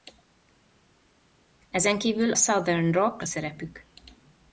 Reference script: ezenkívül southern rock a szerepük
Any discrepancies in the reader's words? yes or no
no